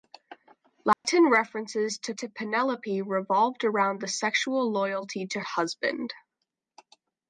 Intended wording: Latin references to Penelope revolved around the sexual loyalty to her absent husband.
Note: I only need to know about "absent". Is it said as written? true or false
false